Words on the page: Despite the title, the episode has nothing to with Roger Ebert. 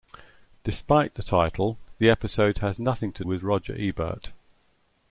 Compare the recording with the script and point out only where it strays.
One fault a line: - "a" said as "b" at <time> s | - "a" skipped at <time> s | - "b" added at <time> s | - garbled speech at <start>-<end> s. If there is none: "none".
none